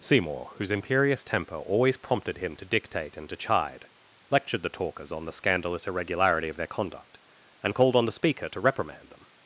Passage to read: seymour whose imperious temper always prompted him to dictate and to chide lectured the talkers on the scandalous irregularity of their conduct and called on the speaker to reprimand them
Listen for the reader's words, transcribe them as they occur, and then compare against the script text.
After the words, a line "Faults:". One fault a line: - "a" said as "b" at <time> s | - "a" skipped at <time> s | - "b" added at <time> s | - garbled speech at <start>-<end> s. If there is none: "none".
seymour whose imperious temper always prompted him to dictate and to chide lectured the talkers on the scandalous irregularity of their conduct and called on the speaker to reprimand them
Faults:
none